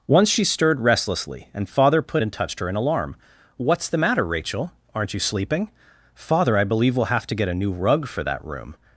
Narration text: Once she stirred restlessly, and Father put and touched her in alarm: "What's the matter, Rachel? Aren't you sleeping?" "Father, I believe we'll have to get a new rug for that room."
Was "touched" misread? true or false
false